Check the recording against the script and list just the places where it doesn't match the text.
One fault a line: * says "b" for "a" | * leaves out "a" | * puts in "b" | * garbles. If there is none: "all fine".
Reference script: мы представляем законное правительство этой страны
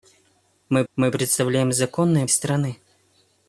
* puts in "мы"
* leaves out "правительство этой"